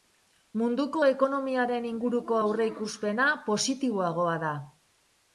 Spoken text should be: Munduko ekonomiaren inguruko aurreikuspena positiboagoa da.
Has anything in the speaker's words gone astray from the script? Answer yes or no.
no